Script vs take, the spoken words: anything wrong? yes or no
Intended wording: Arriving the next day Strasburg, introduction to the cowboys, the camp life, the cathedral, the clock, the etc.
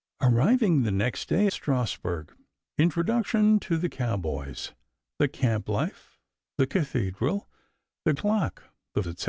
no